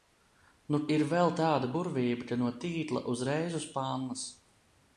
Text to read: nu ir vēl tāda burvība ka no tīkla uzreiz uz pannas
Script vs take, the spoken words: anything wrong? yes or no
no